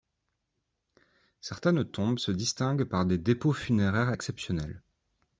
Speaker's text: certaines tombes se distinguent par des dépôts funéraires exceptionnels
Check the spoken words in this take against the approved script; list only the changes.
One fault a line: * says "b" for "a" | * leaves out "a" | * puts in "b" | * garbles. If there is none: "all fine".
all fine